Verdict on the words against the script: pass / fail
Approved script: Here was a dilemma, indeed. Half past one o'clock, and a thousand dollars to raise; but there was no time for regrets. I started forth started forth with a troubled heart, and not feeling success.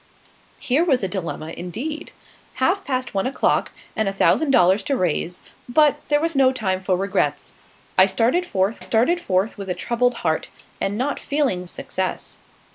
pass